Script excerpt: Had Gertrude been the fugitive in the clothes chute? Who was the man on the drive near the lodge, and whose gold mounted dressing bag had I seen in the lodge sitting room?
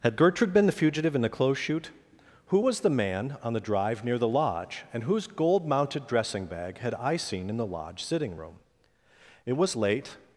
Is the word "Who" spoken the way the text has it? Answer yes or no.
yes